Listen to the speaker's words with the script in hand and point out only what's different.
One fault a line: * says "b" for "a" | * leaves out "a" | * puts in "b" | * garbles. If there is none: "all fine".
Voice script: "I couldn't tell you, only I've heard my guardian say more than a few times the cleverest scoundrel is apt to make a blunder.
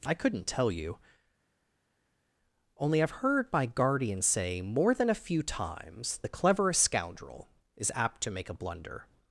all fine